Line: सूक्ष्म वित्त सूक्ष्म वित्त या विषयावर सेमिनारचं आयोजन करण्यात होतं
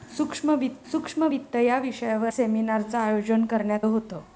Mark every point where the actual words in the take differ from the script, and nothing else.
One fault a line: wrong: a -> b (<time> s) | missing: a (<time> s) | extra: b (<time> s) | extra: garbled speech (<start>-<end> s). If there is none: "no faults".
no faults